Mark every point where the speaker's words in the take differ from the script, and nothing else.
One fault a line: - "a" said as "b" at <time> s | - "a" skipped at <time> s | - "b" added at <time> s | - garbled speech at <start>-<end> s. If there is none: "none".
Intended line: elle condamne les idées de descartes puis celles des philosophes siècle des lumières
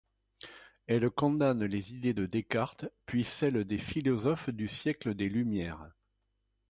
- "du" added at 4.5 s